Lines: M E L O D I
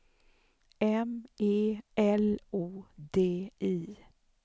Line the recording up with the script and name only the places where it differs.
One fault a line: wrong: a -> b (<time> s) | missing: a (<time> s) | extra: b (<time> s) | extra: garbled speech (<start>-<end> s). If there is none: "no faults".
no faults